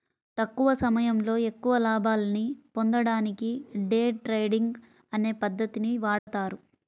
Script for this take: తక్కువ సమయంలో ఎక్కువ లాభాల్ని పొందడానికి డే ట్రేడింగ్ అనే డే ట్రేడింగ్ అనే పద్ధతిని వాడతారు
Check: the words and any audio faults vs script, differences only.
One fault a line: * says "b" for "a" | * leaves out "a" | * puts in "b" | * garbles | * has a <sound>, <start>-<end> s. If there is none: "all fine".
* leaves out "డే ట్రేడింగ్ అనే"
* has a dropout, 6.2-6.3 s